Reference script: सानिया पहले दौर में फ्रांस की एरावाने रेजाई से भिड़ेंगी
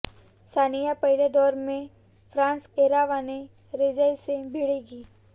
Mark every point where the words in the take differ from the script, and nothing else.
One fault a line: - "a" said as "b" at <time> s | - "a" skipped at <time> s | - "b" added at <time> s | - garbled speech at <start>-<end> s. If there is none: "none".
- "की" skipped at 2.6 s